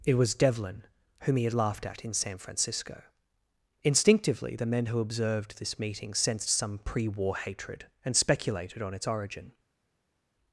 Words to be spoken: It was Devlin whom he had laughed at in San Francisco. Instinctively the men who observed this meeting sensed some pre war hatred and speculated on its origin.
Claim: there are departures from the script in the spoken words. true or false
false